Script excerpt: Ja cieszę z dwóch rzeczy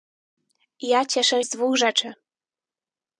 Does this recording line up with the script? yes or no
yes